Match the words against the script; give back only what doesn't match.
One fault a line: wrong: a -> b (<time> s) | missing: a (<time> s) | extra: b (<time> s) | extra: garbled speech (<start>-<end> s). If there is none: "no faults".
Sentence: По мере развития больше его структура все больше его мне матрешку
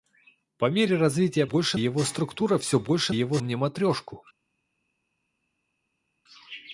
no faults